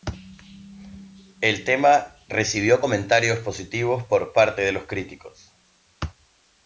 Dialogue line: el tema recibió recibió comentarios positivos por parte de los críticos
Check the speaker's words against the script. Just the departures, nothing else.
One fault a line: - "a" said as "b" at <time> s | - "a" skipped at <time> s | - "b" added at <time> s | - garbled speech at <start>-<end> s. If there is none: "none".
- "recibió" skipped at 2.8 s